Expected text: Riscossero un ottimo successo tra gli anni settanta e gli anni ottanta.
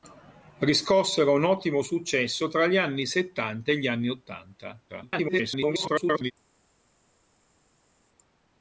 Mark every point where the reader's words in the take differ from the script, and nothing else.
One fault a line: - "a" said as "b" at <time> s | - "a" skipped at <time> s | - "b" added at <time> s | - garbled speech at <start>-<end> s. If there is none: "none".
- garbled speech at 4.9-6.3 s